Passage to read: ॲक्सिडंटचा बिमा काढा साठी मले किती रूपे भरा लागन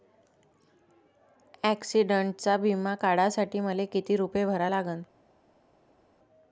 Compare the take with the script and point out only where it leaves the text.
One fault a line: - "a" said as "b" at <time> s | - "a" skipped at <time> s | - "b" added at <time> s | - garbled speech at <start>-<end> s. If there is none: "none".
none